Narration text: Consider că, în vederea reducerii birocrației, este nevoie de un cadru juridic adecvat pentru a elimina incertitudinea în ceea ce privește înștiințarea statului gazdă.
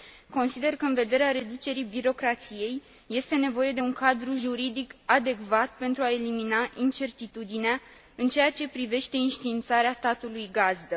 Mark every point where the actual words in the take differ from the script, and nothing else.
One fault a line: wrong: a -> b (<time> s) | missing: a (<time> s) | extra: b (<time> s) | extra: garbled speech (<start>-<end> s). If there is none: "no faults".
no faults